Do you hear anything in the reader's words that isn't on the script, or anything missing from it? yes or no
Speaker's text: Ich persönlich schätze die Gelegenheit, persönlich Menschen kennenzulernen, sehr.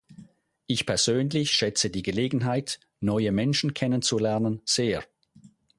yes